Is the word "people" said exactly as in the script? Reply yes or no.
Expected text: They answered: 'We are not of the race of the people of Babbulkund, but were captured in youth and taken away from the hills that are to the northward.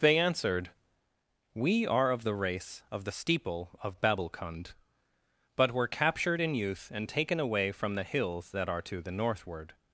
no